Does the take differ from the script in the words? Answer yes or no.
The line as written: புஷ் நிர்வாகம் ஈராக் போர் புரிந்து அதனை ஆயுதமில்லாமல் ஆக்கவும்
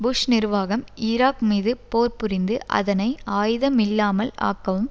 yes